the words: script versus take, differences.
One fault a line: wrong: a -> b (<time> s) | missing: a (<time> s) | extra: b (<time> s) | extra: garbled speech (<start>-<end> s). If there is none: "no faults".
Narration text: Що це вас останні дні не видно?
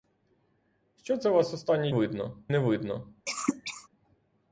wrong: дні -> видно (1.9 s)